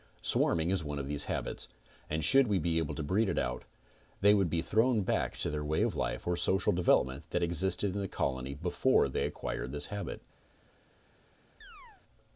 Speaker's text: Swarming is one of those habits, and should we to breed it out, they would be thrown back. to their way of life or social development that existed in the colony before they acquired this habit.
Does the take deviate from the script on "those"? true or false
true